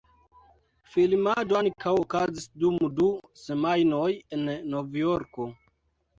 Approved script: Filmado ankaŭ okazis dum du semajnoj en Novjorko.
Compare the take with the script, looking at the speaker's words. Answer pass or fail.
pass